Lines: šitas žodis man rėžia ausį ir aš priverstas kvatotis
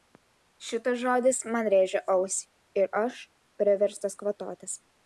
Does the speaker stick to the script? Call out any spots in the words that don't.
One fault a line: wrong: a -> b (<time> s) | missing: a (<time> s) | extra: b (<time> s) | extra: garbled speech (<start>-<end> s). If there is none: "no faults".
no faults